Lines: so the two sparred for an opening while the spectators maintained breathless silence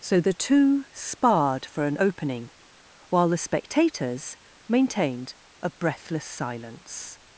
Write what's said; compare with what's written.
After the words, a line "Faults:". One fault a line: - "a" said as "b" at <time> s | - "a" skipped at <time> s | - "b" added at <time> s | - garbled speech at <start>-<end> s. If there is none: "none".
so the two sparred for an opening while the spectators maintained a breathless silence
Faults:
- "a" added at 5.6 s